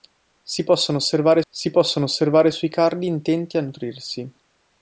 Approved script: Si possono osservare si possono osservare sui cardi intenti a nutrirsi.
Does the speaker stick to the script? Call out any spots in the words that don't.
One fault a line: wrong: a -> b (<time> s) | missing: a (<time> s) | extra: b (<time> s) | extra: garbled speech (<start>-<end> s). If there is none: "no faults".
no faults